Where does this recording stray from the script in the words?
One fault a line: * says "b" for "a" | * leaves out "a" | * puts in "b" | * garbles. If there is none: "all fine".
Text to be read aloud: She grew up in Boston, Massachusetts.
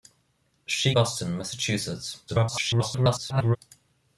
* leaves out "grew up in"
* garbles